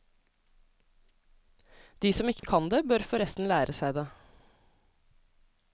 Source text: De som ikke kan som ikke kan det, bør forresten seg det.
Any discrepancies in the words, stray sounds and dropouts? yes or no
yes